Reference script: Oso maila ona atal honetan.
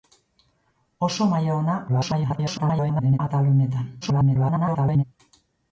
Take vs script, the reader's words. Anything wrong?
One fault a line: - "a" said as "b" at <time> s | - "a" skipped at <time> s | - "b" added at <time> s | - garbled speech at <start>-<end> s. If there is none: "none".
- garbled speech at 1.9-3.2 s
- garbled speech at 4.0-5.0 s